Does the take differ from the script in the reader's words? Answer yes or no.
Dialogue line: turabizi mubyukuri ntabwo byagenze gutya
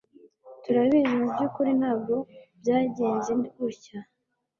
no